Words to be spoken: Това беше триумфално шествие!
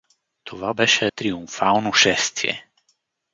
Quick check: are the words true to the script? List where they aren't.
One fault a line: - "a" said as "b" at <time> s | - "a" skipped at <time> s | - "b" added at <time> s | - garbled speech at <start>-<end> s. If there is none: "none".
none